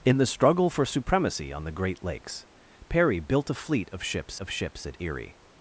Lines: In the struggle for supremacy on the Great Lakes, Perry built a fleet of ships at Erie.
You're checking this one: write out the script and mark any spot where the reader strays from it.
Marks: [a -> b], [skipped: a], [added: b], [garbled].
In the struggle for supremacy on the Great Lakes, Perry built a fleet of ships [added: of ships] at Erie.